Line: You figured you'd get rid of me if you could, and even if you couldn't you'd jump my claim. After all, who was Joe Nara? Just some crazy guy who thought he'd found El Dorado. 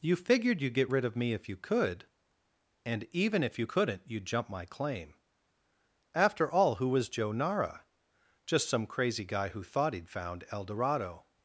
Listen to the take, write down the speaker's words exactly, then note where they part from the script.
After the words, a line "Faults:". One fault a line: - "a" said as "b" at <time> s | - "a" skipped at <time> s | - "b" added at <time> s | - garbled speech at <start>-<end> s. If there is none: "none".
You figured you'd get rid of me if you could, and even if you couldn't you'd jump my claim. After all, who was Joe Nara? Just some crazy guy who thought he'd found El Dorado.
Faults:
none